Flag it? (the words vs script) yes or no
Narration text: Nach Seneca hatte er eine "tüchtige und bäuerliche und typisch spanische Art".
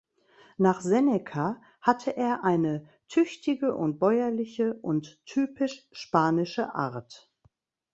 no